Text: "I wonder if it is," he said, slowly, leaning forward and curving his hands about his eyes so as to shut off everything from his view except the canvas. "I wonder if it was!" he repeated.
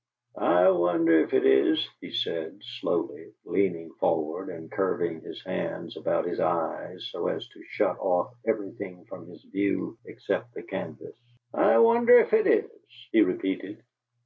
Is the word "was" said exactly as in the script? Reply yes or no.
no